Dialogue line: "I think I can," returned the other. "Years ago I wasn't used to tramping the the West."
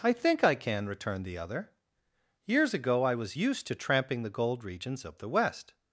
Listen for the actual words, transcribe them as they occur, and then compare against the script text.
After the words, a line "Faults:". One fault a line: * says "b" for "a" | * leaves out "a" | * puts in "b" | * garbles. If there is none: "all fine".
"I think I can," returned the other. "Years ago I was used to tramping the gold regions of the West."
Faults:
* says "was" for "wasn't"
* puts in "gold regions of"